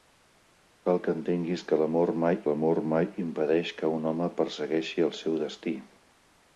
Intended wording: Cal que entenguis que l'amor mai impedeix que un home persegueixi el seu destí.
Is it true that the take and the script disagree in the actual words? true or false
true